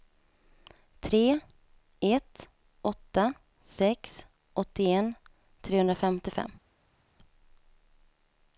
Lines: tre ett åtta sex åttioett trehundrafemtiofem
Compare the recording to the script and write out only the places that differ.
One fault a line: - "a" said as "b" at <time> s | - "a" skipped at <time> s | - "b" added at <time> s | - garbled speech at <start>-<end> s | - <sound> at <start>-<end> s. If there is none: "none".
none